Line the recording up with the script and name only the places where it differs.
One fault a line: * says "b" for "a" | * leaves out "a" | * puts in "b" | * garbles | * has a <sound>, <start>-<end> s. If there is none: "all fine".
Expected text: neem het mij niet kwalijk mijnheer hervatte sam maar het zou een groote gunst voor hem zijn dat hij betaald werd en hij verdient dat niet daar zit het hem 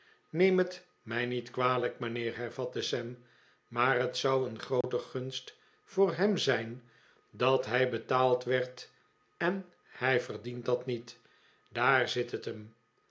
* has a dropout, 4.8-4.8 s